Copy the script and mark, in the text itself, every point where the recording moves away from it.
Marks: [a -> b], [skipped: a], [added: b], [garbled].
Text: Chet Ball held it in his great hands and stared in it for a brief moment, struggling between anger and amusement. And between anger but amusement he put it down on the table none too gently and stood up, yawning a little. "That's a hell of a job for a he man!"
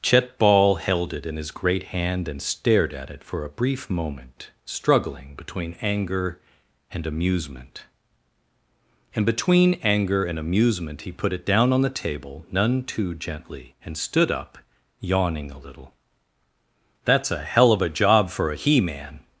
Chet Ball held it in his great [hands -> hand] and stared [in -> at] it for a brief moment, struggling between anger and amusement. And between anger [but -> and] amusement he put it down on the table none too gently and stood up, yawning a little. "That's a hell of a job for a he man!"